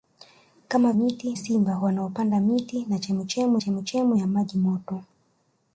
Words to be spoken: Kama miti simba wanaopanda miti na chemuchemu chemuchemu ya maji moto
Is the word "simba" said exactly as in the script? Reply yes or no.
yes